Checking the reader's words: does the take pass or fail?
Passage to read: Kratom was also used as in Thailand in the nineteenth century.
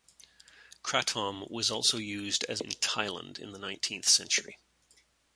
pass